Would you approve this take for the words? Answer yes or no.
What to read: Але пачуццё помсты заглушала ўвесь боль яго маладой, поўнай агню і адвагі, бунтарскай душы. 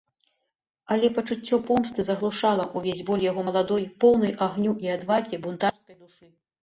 yes